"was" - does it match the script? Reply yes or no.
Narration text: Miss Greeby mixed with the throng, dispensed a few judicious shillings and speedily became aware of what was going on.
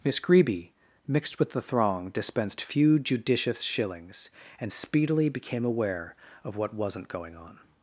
no